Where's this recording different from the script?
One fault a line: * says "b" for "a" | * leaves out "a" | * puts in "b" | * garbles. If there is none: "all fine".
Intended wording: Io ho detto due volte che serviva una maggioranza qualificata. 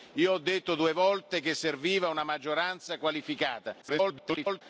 * garbles